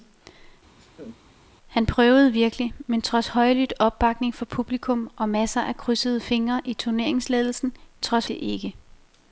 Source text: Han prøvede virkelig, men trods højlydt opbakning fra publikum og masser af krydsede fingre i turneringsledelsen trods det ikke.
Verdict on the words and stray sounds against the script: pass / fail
fail